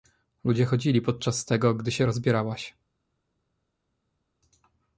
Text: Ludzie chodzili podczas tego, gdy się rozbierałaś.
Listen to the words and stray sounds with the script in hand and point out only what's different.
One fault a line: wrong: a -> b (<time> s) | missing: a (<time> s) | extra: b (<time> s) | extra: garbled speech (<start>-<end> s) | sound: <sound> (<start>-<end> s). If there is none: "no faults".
no faults